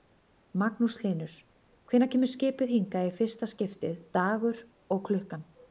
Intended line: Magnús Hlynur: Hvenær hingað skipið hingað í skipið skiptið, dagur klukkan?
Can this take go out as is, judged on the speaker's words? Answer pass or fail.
fail